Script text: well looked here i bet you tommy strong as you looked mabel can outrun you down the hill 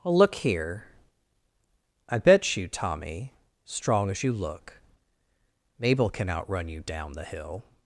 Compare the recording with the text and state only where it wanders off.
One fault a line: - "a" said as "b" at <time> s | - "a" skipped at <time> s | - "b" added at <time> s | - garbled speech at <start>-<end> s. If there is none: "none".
- "looked" said as "look" at 0.2 s
- "looked" said as "look" at 4.3 s